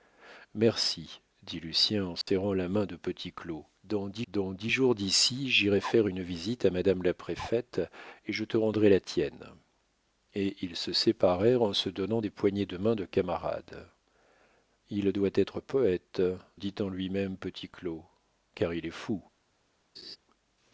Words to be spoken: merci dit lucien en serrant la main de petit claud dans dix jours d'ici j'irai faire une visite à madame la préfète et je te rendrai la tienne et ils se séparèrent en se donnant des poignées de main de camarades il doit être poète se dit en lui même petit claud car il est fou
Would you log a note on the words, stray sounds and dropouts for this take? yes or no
yes